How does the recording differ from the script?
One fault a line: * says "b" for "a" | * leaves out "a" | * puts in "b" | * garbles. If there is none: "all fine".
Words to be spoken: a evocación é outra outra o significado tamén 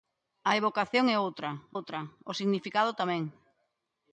all fine